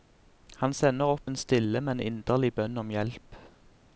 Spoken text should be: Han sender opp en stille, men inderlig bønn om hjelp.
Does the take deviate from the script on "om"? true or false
false